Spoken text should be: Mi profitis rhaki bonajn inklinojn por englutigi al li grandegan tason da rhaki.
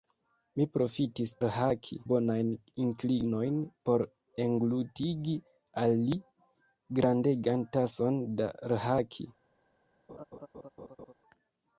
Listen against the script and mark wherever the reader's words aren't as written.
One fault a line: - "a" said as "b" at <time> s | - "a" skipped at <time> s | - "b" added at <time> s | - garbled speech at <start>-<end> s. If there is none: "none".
none